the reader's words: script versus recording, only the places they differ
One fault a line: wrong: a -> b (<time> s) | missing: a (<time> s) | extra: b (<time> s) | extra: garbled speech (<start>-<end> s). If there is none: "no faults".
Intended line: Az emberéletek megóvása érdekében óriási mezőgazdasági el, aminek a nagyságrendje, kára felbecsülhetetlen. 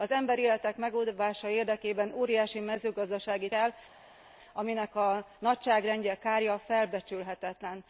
no faults